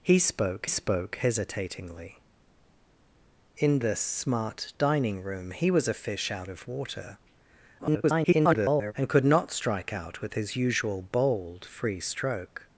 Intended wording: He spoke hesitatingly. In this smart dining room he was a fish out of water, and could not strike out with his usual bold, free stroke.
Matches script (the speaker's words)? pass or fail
fail